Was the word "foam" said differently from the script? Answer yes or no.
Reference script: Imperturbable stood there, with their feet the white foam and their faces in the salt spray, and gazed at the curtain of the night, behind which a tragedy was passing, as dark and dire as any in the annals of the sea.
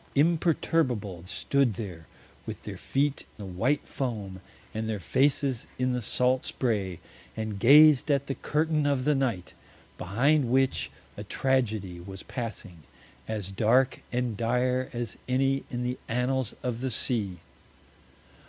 no